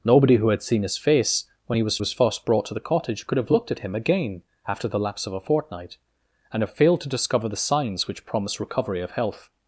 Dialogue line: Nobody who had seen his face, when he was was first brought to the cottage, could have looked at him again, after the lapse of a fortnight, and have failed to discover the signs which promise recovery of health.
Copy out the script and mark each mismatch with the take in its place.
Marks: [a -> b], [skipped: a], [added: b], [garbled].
Nobody who had seen his face, when he was was first brought to the cottage, could have looked at him again, after the lapse of a fortnight, and have failed to discover the signs which promise recovery of health.